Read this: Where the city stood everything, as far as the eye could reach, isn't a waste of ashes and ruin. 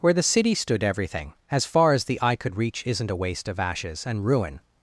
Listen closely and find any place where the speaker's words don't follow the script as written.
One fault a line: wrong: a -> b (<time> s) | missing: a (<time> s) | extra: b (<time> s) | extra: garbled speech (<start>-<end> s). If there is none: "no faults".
no faults